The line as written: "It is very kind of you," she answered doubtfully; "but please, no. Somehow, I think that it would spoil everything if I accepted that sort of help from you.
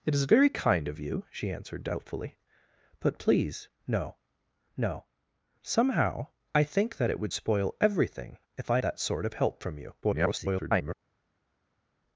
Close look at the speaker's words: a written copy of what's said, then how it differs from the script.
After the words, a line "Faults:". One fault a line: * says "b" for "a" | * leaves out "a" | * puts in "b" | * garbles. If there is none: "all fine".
"It is very kind of you," she answered doubtfully; "but please, no no. Somehow, I think that it would spoil everything if I that sort of help from you. [garbled]
Faults:
* puts in "no"
* leaves out "accepted"
* garbles